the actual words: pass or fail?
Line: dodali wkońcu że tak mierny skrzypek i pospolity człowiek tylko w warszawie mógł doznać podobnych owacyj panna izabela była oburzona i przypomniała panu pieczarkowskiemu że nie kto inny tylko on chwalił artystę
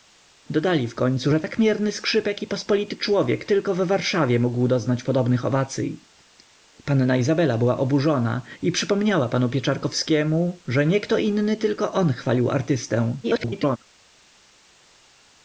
fail